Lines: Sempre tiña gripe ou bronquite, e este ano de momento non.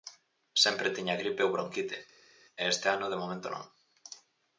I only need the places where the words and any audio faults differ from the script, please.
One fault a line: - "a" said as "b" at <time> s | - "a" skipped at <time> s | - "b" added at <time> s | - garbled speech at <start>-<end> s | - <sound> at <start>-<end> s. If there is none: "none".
none